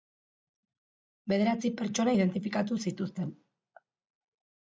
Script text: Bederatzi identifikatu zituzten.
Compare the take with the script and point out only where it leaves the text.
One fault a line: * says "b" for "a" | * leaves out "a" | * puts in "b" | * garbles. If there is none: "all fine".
* puts in "pertsona"